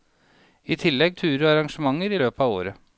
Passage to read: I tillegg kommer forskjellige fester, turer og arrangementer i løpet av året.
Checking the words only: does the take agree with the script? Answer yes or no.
no